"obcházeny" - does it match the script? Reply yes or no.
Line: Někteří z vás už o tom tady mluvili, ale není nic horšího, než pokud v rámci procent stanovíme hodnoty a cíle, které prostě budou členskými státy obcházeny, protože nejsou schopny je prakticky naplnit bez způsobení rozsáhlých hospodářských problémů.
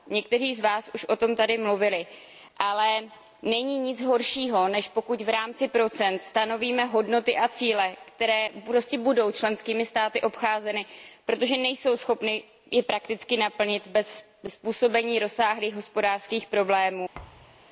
yes